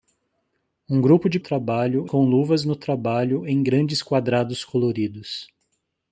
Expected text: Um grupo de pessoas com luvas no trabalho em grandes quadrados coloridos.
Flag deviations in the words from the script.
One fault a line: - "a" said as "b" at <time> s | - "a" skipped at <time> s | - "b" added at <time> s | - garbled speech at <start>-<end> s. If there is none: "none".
- "pessoas" said as "trabalho" at 1.4 s